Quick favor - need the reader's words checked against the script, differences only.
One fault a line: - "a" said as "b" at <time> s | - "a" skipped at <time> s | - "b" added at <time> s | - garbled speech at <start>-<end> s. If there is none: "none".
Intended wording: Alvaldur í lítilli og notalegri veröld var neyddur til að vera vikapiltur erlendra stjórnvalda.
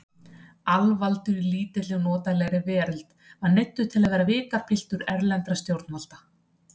none